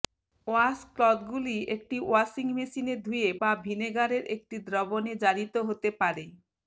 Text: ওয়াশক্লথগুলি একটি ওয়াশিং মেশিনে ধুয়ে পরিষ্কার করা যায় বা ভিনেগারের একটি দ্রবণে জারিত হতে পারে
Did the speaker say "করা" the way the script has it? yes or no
no